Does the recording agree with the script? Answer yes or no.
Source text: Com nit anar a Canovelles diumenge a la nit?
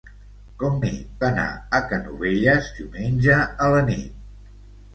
yes